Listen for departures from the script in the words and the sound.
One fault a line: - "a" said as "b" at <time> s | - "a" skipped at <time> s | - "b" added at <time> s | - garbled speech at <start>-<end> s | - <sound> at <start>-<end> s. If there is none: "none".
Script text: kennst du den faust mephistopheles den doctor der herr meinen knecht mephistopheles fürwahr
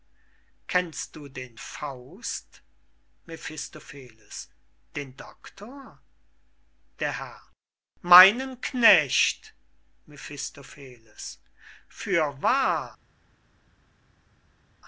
none